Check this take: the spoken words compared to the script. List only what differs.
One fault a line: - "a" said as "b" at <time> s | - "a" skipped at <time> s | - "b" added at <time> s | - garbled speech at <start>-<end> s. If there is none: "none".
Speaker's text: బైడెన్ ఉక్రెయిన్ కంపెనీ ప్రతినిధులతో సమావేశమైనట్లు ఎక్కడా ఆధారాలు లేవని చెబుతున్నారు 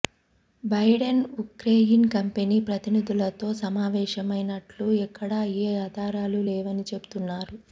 - "ఏ" added at 5.6 s